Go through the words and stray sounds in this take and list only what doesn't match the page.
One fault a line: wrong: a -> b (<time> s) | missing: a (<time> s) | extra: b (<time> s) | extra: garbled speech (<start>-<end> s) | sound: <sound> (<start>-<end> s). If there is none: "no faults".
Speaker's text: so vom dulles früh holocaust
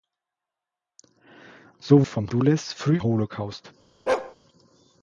sound: bark (4.1-4.4 s)